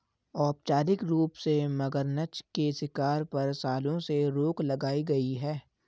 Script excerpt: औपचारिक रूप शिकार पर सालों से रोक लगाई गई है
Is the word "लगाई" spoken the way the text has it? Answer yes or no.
yes